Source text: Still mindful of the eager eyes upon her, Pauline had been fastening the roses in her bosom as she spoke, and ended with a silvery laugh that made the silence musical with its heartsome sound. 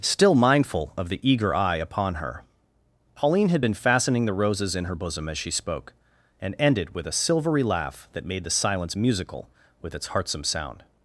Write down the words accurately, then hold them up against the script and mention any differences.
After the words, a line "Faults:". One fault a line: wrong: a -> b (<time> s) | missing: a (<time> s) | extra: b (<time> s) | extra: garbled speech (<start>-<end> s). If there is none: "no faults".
Still mindful of the eager eye upon her, Pauline had been fastening the roses in her bosom as she spoke, and ended with a silvery laugh that made the silence musical with its heartsome sound.
Faults:
wrong: eyes -> eye (1.5 s)